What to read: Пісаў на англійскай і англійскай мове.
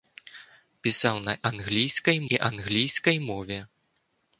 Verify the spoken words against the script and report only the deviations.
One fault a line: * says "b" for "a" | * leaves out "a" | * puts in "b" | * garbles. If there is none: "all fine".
all fine